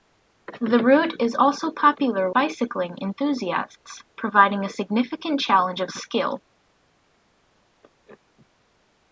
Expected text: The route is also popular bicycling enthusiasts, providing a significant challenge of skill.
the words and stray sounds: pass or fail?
pass